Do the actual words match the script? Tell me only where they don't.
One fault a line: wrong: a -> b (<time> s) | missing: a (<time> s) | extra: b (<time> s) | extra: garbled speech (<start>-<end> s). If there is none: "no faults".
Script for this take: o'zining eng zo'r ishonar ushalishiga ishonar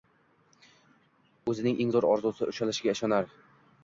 wrong: ishonar -> orzusi (2.1 s)